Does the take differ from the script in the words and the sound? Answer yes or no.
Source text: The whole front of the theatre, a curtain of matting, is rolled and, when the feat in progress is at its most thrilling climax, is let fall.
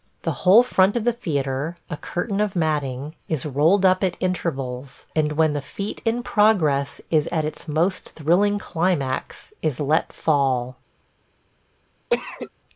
yes